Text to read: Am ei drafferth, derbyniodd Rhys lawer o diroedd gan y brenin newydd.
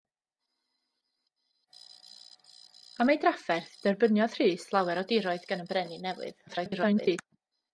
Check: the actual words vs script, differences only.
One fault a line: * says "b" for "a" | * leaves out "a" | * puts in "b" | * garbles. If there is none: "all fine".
* garbles